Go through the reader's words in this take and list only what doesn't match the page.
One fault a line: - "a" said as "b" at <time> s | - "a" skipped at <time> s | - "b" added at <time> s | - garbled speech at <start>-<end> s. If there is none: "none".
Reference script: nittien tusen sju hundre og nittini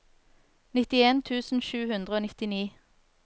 none